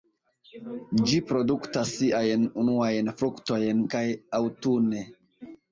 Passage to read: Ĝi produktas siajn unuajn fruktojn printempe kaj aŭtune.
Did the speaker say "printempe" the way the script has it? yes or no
no